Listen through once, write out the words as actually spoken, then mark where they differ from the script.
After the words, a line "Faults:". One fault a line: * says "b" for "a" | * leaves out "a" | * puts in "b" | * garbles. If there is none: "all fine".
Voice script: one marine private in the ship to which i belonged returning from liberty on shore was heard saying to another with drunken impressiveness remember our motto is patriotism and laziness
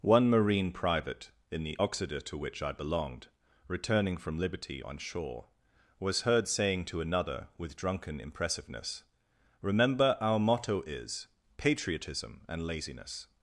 one marine private in the oxida to which i belonged returning from liberty on shore was heard saying to another with drunken impressiveness remember our motto is patriotism and laziness
Faults:
* says "oxida" for "ship"